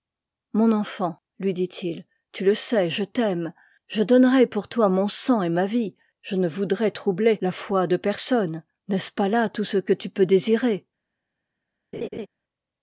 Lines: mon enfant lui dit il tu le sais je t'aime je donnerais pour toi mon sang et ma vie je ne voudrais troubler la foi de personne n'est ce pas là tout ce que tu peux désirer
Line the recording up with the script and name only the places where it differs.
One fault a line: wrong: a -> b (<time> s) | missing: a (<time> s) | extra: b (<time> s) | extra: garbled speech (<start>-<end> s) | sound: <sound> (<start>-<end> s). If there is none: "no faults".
sound: laugh (11.9-12.3 s)